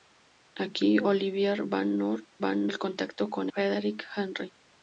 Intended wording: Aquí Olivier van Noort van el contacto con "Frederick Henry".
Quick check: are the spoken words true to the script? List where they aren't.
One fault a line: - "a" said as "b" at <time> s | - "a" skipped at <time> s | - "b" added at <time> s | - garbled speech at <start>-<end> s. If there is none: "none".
none